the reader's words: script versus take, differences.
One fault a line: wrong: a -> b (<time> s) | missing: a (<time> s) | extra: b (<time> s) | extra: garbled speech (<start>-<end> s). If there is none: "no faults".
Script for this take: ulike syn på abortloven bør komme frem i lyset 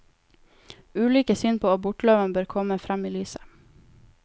no faults